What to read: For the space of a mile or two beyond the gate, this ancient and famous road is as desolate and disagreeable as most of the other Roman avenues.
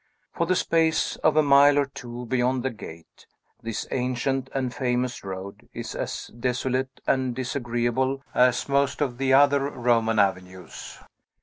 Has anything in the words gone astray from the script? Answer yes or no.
no